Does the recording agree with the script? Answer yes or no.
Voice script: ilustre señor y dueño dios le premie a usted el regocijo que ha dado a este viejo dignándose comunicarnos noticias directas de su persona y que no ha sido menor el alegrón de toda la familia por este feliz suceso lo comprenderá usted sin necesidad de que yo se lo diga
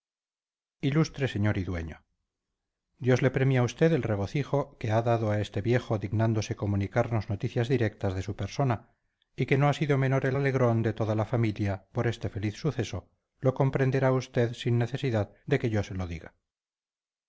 yes